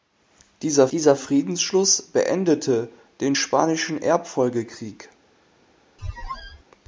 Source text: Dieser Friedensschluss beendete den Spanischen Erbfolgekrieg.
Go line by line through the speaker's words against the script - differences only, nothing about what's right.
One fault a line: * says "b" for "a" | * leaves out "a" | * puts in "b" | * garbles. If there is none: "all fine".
* puts in "dieser"